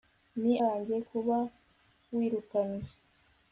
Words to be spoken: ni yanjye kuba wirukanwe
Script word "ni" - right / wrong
right